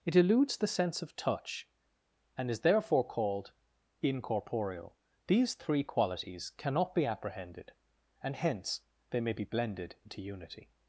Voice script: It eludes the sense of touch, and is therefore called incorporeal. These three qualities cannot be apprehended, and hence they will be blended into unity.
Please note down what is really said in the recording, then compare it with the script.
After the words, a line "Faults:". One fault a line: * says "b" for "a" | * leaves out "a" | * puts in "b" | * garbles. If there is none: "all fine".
It eludes the sense of touch, and is therefore called incorporeal. These three qualities cannot be apprehended, and hence they may be blended into unity.
Faults:
* says "may" for "will"